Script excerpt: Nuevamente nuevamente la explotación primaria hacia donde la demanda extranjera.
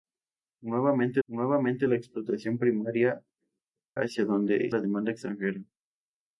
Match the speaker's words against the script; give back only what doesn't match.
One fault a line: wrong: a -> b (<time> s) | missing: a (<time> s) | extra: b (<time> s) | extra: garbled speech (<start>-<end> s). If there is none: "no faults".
no faults